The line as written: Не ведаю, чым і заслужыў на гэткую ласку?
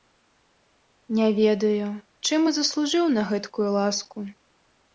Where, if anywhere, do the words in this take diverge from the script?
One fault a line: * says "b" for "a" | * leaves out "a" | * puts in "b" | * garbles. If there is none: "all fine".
all fine